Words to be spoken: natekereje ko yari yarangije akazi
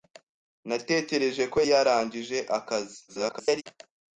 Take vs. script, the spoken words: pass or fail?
fail